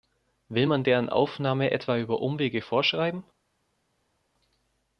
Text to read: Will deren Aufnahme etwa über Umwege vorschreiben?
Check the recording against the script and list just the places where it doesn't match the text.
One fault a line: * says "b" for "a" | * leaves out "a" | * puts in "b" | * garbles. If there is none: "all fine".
* puts in "man"